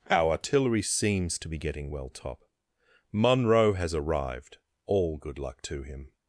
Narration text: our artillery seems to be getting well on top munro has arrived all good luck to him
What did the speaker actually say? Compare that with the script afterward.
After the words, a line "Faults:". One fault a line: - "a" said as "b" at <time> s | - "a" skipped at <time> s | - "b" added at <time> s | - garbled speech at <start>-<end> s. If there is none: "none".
our artillery seems to be getting well top munro has arrived all good luck to him
Faults:
- "on" skipped at 2.1 s